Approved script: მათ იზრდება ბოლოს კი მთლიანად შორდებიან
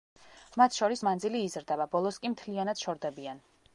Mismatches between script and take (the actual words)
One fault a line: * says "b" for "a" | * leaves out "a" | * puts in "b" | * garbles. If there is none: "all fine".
* puts in "შორის მანძილი"